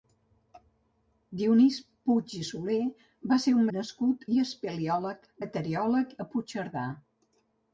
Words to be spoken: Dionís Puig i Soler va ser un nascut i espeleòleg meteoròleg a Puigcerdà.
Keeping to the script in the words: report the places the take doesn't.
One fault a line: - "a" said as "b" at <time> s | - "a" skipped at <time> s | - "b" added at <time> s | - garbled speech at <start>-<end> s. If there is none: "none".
none